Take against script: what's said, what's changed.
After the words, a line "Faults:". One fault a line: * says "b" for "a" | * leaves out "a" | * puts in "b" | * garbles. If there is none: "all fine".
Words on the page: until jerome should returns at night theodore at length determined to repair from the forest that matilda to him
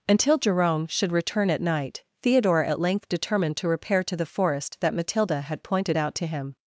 until jerome should return at night theodore at length determined to repair to the forest that matilda had pointed out to him
Faults:
* says "return" for "returns"
* says "to" for "from"
* puts in "had pointed out"